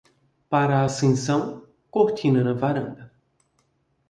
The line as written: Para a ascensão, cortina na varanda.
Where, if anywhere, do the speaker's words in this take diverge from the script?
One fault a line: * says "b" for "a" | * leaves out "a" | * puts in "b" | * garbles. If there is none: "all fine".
all fine